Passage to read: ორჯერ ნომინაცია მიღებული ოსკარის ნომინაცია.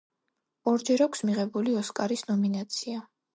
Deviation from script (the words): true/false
true